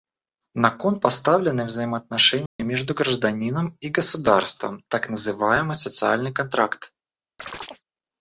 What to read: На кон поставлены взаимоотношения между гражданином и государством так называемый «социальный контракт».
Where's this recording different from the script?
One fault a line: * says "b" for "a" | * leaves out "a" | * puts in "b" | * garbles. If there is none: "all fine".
all fine